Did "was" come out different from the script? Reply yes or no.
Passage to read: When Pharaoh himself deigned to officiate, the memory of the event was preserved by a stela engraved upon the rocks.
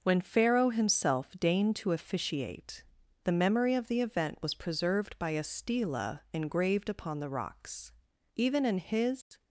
no